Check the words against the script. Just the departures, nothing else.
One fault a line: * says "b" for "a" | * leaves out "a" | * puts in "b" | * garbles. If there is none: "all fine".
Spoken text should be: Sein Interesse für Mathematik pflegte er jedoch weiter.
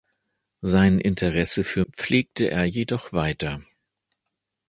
* leaves out "Mathematik"